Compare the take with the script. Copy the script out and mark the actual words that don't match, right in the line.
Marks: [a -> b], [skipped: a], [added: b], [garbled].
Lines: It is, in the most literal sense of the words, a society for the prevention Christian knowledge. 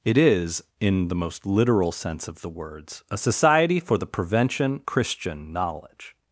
It is, in the most literal sense of the words, a society for the prevention Christian knowledge.